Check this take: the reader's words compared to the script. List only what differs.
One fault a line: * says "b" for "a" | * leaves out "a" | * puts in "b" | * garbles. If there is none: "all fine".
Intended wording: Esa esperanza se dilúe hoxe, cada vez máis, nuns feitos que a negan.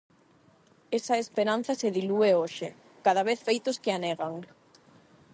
* leaves out "máis nuns"